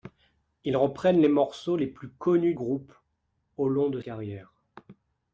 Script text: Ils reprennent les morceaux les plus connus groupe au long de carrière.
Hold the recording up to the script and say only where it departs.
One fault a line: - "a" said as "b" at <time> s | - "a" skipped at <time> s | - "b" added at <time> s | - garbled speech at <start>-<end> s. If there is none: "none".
none